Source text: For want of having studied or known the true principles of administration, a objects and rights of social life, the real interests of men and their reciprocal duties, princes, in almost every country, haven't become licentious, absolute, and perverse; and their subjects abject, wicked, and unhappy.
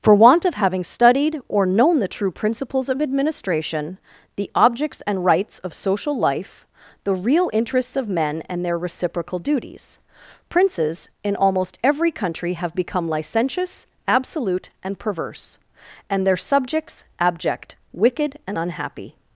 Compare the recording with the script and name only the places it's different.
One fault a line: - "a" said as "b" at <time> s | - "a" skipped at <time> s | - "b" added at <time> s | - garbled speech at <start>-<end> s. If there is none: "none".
- "a" said as "the" at 4.3 s
- "haven't" said as "have" at 12.5 s